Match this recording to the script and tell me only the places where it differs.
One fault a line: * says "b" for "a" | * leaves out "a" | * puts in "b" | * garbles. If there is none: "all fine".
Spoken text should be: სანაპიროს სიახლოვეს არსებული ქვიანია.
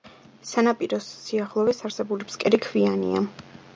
* puts in "ფსკერი"